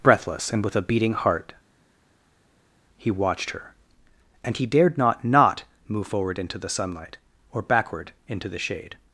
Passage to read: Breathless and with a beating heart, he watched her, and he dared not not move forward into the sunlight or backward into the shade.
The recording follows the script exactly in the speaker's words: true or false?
true